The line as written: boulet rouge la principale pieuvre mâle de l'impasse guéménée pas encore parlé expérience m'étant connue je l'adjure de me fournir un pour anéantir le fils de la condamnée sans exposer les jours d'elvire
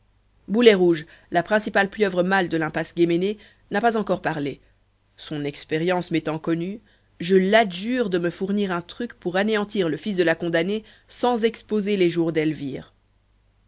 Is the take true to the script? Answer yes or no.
no